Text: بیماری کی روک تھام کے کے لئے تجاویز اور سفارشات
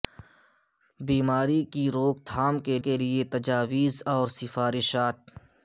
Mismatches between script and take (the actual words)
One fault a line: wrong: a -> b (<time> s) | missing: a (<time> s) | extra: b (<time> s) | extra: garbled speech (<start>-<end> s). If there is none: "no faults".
no faults